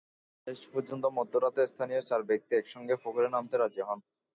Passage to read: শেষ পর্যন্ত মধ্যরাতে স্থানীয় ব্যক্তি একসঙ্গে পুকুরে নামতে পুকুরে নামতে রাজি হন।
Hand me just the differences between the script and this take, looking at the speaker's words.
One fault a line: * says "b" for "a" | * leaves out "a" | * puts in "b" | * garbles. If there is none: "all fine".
* puts in "চার"
* leaves out "পুকুরে নামতে"